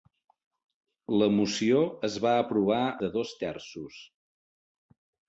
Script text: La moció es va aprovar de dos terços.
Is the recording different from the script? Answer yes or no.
no